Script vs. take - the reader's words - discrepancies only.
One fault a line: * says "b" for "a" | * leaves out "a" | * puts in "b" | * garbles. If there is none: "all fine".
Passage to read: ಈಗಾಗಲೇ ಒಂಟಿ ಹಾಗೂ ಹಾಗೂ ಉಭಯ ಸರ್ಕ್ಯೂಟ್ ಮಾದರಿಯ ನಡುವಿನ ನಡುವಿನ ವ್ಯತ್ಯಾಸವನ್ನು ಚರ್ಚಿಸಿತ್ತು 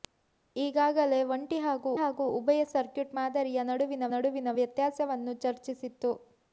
all fine